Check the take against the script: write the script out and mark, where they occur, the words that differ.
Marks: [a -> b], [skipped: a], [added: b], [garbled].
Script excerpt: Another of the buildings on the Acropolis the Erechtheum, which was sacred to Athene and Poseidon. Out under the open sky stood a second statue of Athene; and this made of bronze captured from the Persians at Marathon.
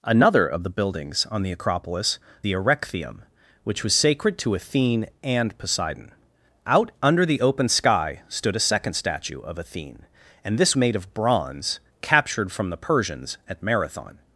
Another of the buildings on the Acropolis the Erechtheum, which was sacred to Athene and Poseidon. Out under the open sky stood a second statue of Athene; and this made of bronze captured from the Persians at Marathon.